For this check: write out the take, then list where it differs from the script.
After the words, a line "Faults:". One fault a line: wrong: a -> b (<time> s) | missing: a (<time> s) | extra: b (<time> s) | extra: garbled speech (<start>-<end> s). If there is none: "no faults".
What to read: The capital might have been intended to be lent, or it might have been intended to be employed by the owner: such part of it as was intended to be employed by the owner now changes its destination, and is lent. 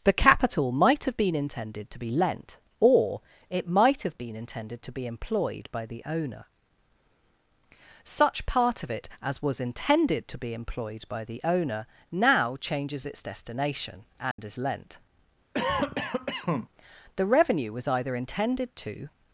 The capital might have been intended to be lent, or it might have been intended to be employed by the owner: such part of it as was intended to be employed by the owner now changes its destination, and is lent. The revenue was either intended to
Faults:
extra: The revenue was either intended to (17.2 s)